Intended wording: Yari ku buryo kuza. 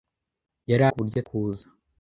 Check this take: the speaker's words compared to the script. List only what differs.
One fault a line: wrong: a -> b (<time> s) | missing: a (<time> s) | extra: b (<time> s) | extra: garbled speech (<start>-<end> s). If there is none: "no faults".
no faults